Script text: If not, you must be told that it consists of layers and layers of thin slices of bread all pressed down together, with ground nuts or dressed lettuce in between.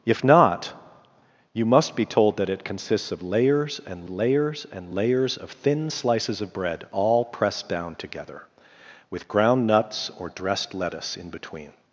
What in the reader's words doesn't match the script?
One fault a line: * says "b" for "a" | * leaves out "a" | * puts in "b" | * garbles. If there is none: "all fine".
* puts in "and layers"